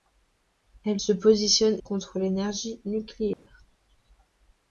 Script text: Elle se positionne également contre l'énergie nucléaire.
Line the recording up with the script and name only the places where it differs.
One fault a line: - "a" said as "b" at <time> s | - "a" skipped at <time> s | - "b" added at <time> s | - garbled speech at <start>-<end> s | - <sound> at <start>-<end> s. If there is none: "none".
- "également" skipped at 1.8 s
- dropout at 3.3-3.5 s